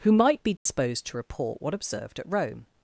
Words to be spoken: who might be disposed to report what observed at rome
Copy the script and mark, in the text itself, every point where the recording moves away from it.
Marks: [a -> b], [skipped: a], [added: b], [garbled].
who might be disposed to report what observed at rome